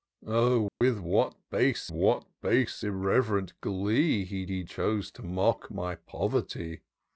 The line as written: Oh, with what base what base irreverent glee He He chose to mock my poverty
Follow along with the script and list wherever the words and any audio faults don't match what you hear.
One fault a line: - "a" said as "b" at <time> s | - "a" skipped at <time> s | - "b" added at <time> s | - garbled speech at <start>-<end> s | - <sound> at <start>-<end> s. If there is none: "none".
- dropout at 0.7-0.8 s